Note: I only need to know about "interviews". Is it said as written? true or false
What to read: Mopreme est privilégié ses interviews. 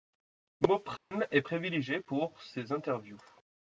true